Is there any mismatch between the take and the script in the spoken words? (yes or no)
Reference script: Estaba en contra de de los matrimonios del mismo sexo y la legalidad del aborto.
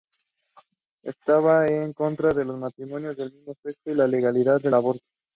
yes